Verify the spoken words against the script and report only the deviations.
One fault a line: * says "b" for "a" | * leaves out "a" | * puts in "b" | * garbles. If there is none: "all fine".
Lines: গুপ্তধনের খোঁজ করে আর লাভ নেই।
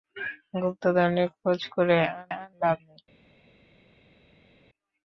* puts in "আর"